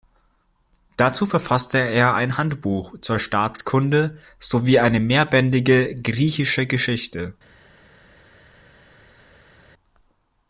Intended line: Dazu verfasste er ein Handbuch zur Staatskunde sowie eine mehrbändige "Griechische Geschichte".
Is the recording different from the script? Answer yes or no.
no